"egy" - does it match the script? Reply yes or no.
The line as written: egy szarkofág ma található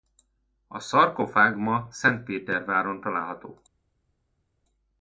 no